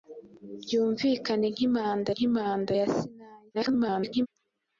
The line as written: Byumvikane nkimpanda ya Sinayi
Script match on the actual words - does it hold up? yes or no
no